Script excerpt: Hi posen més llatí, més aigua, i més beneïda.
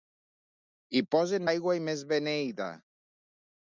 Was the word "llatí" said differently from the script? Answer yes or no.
yes